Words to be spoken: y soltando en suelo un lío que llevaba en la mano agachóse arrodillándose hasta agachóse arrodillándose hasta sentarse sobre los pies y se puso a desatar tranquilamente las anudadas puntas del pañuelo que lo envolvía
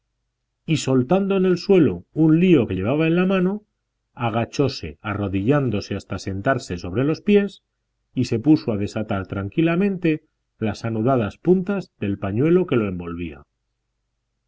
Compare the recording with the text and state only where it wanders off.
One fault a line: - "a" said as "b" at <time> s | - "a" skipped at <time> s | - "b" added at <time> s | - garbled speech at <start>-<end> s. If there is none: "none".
- "el" added at 1.4 s
- "agachóse arrodillándose hasta" skipped at 6.2 s